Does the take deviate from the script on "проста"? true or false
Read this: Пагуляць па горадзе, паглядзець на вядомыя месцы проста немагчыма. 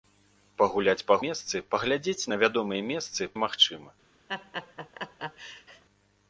true